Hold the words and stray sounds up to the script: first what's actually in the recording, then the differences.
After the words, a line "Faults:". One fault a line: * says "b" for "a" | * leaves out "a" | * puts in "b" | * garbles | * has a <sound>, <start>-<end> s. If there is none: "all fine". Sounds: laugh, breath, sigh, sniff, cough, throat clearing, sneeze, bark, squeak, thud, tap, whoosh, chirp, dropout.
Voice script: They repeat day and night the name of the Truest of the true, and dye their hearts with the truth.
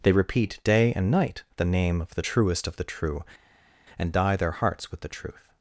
They repeat day and night the name of the Truest of the true, and dye their hearts with the truth.
Faults:
all fine